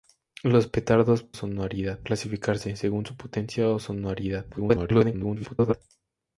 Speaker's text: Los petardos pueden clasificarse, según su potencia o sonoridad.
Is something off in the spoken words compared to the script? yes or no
yes